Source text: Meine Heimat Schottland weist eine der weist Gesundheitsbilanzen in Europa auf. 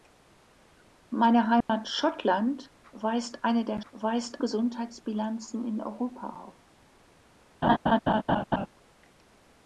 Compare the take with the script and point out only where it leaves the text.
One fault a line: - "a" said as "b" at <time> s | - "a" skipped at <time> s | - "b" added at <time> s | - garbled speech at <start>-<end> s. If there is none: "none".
none